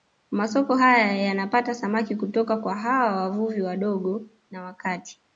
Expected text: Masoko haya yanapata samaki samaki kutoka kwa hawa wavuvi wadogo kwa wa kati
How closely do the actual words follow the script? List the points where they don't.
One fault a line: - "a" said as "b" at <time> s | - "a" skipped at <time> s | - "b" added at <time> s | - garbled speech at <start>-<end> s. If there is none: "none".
- "samaki" skipped at 2.1 s
- "kwa" said as "na" at 4.5 s